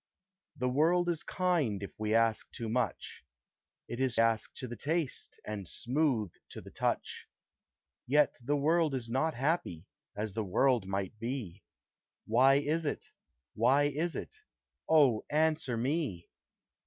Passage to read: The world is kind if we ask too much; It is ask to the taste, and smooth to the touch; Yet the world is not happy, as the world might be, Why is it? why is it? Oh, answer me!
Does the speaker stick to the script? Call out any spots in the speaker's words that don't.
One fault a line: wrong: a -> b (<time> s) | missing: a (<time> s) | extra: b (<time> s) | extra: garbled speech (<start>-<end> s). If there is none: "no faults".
no faults